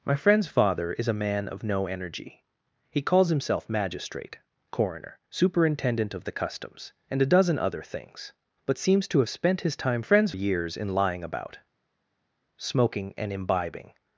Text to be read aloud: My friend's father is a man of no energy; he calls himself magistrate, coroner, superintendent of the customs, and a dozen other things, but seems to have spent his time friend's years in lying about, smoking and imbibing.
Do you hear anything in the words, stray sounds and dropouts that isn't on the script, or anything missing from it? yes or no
no